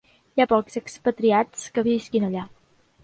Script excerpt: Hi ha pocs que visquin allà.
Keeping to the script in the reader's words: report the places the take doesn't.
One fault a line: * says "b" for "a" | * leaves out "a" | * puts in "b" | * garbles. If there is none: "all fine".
* puts in "expatriats"